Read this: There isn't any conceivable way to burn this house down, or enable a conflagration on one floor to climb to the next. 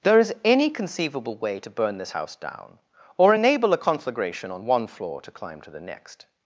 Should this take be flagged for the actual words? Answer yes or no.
yes